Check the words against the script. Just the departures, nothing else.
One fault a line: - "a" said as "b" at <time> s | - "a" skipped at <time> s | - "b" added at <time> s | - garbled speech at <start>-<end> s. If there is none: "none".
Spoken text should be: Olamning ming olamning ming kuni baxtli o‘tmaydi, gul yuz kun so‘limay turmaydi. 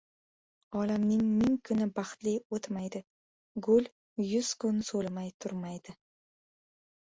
- "olamning ming" skipped at 1.6 s